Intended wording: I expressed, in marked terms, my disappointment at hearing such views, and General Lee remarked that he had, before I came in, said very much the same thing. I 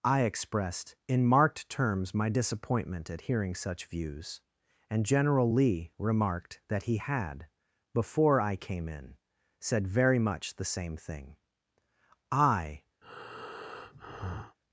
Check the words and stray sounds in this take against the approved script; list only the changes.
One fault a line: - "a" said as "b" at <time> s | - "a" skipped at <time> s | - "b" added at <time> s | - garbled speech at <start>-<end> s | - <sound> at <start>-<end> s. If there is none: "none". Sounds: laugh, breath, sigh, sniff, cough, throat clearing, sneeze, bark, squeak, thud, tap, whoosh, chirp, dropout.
- breath at 13.0-14.6 s